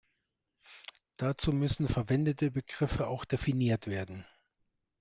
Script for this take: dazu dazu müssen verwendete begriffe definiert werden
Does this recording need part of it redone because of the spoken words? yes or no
yes